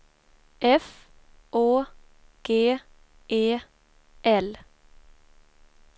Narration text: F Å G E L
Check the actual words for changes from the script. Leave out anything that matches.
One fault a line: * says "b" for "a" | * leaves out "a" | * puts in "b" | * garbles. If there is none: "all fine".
all fine